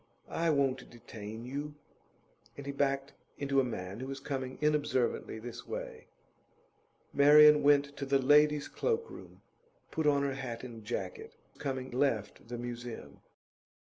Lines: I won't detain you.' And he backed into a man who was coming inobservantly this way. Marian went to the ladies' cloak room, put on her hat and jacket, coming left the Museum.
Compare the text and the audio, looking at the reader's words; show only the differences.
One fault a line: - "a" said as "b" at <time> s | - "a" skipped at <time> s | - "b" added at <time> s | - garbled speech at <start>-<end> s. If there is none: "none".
none